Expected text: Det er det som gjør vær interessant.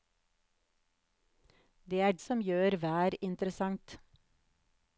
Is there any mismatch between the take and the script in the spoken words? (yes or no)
yes